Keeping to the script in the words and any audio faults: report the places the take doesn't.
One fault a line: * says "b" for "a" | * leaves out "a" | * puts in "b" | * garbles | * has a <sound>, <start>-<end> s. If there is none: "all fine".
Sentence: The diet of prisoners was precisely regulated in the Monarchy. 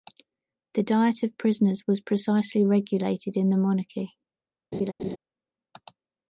* has a laugh, 4.7-5.2 s